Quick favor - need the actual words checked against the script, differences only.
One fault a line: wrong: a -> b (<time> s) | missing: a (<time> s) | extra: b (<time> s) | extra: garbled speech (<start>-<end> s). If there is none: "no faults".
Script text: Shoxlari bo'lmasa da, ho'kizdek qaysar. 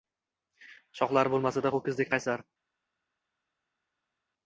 no faults